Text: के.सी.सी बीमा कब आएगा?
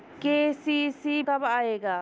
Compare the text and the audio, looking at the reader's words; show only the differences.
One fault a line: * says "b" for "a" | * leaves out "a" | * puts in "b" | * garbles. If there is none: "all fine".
* leaves out "बीमा"